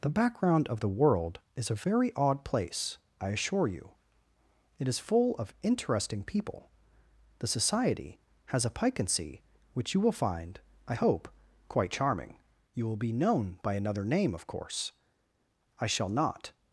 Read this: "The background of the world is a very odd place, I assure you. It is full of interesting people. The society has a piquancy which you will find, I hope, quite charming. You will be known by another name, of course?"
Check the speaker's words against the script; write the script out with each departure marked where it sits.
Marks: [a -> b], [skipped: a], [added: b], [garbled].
"The background of the world is a very odd place, I assure you. It is full of interesting people. The society has a piquancy which you will find, I hope, quite charming. You will be known by another name, of course?" [added: I shall not]